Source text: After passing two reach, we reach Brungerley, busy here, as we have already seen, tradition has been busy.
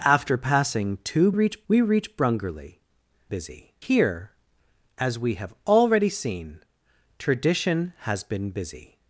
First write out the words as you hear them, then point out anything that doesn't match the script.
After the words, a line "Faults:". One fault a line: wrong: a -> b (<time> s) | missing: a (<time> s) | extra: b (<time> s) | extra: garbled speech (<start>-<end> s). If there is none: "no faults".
After passing two reach, we reach Brungerley, busy here, as we have already seen, tradition has been busy.
Faults:
no faults